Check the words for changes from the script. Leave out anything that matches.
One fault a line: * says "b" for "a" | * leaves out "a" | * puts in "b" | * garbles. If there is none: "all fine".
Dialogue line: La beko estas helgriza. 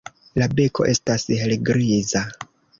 all fine